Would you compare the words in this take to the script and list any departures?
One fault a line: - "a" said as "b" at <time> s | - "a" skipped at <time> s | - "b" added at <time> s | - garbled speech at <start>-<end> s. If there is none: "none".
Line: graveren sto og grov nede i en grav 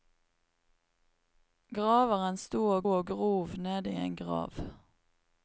- "og" added at 2.9 s